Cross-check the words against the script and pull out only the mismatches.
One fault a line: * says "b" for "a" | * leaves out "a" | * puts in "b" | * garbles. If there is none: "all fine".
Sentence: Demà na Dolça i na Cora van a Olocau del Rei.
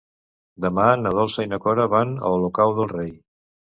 all fine